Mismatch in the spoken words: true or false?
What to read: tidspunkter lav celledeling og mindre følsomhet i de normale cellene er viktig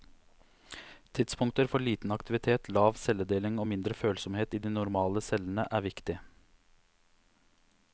true